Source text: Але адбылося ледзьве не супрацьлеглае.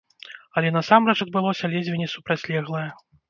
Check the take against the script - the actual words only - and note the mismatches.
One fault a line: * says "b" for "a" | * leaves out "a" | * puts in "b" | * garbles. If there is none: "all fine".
* puts in "насамрэч"